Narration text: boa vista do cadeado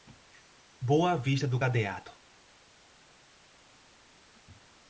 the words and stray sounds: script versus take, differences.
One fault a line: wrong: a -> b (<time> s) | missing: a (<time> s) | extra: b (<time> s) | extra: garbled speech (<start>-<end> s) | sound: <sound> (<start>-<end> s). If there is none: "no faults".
no faults